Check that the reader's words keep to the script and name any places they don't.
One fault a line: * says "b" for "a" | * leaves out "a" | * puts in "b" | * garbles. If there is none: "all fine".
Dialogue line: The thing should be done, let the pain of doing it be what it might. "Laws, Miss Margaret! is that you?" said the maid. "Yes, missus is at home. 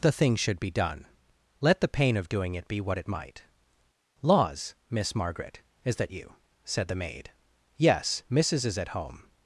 all fine